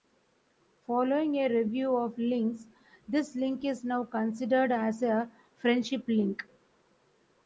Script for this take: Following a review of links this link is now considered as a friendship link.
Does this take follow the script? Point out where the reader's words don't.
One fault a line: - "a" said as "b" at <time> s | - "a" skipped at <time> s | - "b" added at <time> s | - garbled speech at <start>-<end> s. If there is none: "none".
none